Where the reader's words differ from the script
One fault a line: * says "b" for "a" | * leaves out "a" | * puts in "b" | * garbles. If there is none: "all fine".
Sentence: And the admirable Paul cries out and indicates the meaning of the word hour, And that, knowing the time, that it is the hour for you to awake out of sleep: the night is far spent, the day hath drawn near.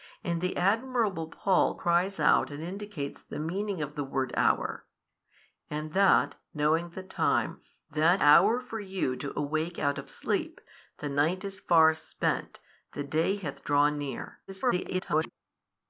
* leaves out "it is the"
* garbles